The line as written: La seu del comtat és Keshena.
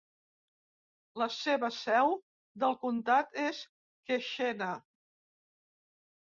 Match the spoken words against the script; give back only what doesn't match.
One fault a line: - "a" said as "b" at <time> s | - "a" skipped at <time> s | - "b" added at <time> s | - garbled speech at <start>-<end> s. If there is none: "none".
- "seva" added at 1.4 s